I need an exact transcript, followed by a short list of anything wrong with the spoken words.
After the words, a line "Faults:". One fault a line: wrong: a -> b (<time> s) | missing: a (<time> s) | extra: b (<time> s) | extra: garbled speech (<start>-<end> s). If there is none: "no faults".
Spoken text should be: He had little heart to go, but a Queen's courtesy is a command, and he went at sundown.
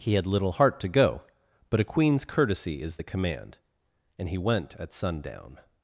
He had little heart to go, but a Queen's courtesy is the command, and he went at sundown.
Faults:
wrong: a -> the (2.9 s)